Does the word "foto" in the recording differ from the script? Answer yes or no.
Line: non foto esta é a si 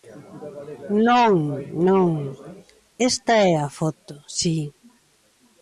yes